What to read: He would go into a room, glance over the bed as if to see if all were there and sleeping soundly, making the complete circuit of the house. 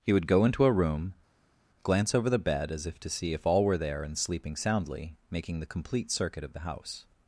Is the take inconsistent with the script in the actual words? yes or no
no